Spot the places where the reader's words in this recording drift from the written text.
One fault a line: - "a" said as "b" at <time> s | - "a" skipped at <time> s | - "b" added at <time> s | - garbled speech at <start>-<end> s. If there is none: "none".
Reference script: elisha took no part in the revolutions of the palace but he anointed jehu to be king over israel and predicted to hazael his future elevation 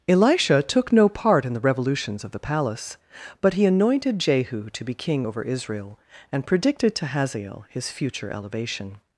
none